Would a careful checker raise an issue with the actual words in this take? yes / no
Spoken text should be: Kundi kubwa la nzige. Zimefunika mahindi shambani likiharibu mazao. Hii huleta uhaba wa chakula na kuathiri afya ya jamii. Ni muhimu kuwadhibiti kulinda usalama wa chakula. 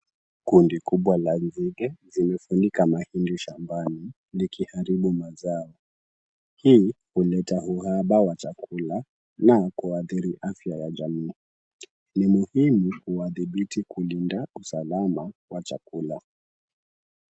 no